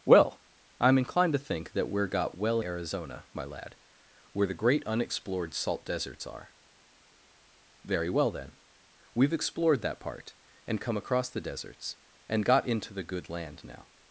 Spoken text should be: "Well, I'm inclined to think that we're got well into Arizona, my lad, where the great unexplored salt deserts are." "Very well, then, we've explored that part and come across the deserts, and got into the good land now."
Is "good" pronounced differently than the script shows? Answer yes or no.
no